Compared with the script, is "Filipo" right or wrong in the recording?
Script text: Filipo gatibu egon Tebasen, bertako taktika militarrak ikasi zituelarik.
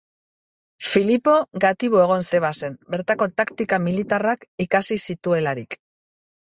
right